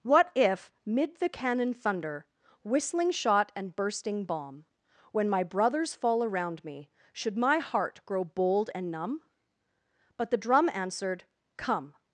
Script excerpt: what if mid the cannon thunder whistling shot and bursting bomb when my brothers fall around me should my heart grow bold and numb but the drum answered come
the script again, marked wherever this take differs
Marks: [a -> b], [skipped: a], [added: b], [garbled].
what if mid the cannon thunder whistling shot and bursting bomb when my brothers fall around me should my heart grow bold and numb but the drum answered come